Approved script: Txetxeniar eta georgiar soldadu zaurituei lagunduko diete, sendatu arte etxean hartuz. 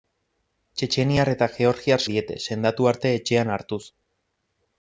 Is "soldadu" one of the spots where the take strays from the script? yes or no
yes